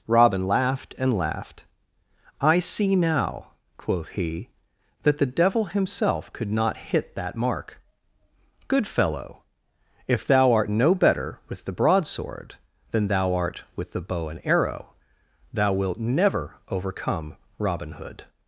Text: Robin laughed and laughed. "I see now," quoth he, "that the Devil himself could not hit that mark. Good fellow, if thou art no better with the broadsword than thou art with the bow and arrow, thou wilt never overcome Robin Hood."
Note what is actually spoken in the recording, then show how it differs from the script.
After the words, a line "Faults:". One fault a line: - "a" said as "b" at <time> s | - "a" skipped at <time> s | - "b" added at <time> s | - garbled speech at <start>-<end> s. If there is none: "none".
Robin laughed and laughed. "I see now," quoth he, "that the Devil himself could not hit that mark. Good fellow, if thou art no better with the broadsword than thou art with the bow and arrow, thou wilt never overcome Robin Hood."
Faults:
none